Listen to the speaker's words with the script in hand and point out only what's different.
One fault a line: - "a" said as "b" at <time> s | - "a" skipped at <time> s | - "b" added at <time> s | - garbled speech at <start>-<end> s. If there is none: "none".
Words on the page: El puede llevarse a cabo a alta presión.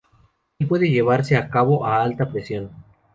none